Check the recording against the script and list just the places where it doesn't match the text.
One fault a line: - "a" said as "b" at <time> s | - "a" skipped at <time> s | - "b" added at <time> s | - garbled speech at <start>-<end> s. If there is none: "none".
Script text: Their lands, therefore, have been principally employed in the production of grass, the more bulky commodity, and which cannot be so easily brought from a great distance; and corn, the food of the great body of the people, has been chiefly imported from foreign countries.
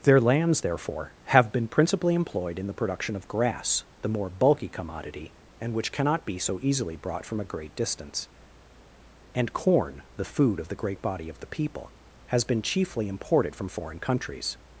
none